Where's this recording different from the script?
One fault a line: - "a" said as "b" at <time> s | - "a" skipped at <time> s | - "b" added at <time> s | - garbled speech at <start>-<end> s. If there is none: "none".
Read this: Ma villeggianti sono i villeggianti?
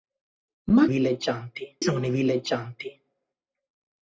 none